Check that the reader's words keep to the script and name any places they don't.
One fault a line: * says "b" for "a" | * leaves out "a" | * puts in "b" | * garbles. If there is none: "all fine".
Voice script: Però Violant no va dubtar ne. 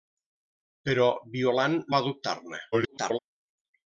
* leaves out "no"
* garbles